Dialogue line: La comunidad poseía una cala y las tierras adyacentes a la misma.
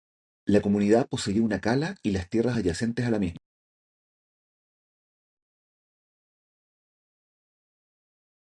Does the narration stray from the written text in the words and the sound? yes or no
no